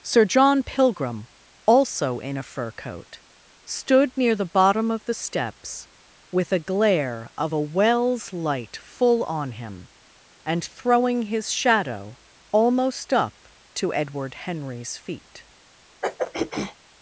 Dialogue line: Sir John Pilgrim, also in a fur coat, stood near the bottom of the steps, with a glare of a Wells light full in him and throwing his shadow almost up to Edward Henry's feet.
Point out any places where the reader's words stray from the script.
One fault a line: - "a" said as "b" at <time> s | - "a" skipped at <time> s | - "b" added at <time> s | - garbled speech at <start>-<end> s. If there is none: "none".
- "in" said as "on" at 9.2 s